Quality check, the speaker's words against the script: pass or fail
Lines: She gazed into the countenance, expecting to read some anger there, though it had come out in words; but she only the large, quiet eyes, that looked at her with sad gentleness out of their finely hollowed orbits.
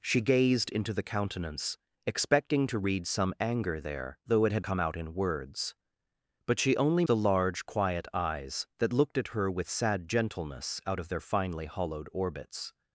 pass